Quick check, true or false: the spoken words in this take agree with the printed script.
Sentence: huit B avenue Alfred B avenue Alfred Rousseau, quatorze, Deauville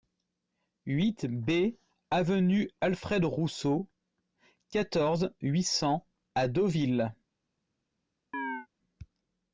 false